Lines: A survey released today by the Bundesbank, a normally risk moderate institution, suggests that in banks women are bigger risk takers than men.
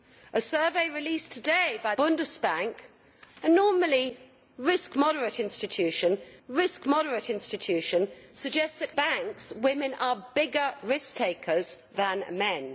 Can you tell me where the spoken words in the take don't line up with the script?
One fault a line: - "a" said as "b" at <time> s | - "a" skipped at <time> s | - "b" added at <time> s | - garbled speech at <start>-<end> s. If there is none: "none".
- "the" skipped at 1.9 s
- "risk moderate institution" added at 6.5 s
- "in" skipped at 8.9 s